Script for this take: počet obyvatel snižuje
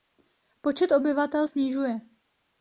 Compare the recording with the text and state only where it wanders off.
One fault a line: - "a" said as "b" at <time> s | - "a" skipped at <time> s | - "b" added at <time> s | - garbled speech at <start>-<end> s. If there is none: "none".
none